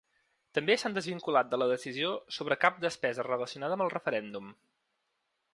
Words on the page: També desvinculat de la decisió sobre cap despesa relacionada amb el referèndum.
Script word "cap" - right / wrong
right